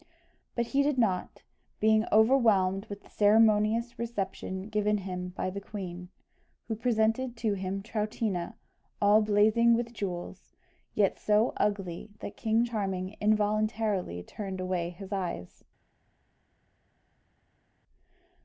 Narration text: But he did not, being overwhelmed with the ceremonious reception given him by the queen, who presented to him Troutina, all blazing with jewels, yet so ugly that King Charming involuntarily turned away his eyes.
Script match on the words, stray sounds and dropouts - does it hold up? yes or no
yes